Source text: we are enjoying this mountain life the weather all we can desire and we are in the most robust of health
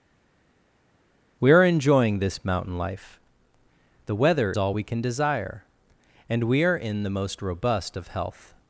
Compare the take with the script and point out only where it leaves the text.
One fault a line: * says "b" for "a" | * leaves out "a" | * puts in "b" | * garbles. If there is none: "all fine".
all fine